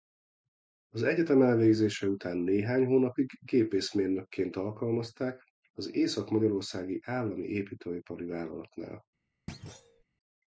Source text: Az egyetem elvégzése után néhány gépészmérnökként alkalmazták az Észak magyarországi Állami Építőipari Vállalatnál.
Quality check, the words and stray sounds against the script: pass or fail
fail